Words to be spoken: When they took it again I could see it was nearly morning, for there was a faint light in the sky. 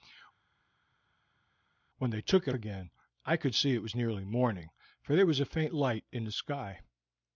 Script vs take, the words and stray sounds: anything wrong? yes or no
no